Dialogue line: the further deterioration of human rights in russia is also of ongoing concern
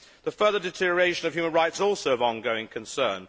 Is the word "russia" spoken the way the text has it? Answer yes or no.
no